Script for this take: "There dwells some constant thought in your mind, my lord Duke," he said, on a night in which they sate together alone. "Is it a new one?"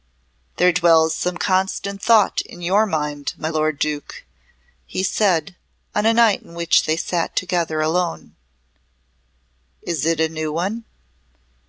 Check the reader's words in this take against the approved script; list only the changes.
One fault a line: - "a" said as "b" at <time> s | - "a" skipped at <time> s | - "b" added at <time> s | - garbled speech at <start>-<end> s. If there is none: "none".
none